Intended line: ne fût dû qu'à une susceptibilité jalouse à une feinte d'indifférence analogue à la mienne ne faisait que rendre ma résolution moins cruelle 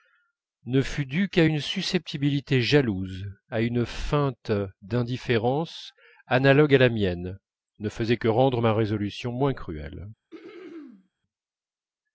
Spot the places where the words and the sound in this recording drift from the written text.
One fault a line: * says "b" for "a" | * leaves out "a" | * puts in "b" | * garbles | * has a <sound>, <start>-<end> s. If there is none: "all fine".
* has a throat clearing, 10.3-11.1 s